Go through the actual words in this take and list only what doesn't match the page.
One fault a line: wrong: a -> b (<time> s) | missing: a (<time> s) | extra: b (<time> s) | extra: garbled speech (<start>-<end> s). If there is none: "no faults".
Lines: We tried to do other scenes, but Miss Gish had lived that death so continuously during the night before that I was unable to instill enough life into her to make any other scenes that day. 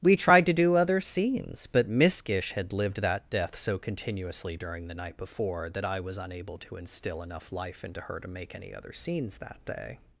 no faults